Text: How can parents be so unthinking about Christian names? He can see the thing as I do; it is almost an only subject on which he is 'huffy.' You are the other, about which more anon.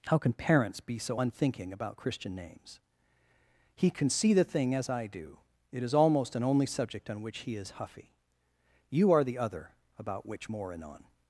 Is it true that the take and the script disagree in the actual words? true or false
false